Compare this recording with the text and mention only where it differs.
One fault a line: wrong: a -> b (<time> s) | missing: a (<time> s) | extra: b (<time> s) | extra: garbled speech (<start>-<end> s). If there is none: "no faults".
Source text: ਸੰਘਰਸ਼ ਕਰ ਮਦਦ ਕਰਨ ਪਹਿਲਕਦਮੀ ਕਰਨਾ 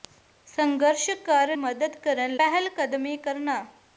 no faults